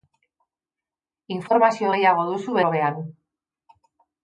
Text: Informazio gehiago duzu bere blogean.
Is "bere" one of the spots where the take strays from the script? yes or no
yes